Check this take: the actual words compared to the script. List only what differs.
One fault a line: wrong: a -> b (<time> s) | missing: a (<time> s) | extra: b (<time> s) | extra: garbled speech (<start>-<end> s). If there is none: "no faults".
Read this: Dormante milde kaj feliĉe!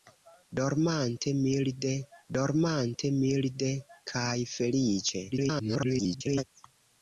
extra: dormante milde (2.4 s)
extra: garbled speech (5.3-6.4 s)